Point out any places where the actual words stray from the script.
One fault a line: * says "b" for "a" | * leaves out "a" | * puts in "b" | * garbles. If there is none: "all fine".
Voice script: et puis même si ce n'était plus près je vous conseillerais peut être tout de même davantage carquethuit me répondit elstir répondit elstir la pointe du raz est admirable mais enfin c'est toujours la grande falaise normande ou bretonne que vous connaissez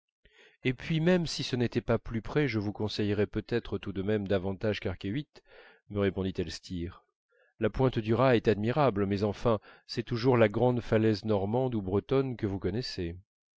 * puts in "pas"
* leaves out "répondit elstir"